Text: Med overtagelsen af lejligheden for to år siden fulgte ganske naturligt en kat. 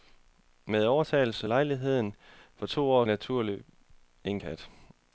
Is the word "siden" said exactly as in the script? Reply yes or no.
no